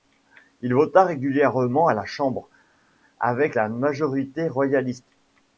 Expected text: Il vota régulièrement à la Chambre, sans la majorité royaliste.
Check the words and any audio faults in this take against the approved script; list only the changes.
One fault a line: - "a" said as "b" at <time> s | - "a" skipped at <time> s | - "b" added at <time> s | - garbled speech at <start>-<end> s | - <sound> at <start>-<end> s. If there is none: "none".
- "sans" said as "avec" at 3.2 s